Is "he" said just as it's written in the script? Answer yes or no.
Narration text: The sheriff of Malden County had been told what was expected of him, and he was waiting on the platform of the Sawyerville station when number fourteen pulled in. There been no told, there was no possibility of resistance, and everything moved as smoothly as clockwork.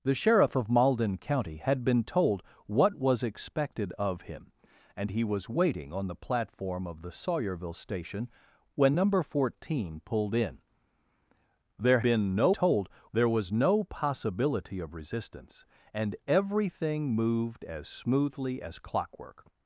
yes